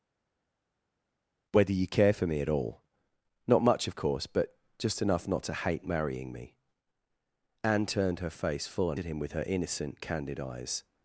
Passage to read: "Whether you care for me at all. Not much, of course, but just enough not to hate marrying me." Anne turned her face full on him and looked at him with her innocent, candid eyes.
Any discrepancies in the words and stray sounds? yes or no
yes